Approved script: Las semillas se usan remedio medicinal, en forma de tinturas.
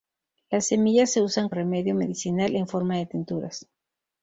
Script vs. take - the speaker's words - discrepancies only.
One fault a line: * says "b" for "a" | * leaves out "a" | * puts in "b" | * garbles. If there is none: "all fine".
all fine